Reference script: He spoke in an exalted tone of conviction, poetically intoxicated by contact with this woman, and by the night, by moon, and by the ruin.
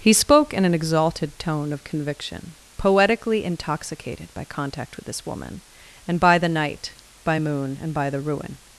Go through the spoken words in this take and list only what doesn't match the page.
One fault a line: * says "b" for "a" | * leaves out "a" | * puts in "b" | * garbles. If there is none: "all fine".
all fine